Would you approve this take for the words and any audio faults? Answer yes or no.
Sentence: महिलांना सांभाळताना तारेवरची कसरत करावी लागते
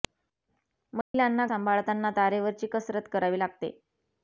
no